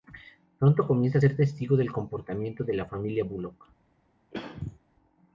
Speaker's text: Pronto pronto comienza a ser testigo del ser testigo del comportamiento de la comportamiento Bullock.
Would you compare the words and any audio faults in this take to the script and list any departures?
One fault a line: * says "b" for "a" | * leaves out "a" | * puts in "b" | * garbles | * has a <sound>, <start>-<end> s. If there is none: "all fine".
* leaves out "pronto"
* leaves out "ser testigo del"
* says "familia" for "comportamiento"
* has a throat clearing, 4.3-4.8 s